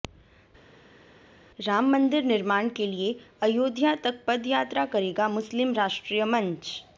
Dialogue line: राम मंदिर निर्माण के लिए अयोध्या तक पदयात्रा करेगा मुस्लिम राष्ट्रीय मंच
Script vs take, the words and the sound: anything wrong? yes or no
no